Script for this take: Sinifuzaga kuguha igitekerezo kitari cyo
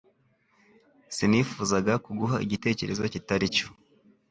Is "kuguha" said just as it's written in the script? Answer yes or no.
yes